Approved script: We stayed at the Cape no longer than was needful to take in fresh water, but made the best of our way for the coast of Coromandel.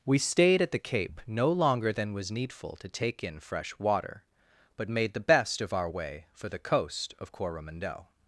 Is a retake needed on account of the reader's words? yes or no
no